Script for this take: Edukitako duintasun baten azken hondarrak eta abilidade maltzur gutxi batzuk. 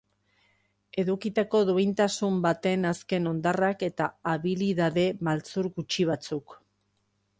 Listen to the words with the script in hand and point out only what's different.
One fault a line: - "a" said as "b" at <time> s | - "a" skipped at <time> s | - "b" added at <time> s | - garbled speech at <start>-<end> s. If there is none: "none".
none